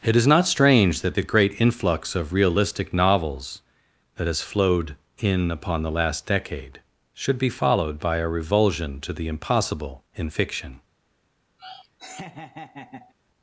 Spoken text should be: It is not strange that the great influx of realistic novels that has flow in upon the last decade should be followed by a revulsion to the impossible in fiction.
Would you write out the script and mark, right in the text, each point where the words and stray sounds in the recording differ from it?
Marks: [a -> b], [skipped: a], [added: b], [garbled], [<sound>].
It is not strange that the great influx of realistic novels that has [flow -> flowed] in upon the last decade should be followed by a revulsion to the impossible in fiction. [laugh]